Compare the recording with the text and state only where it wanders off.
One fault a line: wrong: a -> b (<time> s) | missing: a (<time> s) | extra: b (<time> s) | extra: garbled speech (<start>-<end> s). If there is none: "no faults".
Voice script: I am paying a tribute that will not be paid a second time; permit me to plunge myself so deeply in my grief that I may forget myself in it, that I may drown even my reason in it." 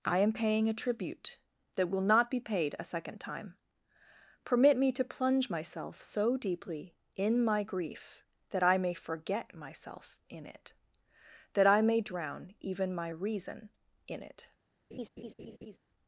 no faults